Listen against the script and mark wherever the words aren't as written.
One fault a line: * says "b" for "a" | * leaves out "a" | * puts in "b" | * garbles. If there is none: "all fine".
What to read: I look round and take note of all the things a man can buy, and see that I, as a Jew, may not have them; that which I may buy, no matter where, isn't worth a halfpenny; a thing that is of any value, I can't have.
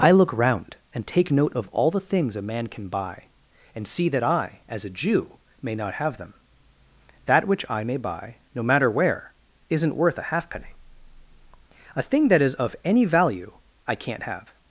all fine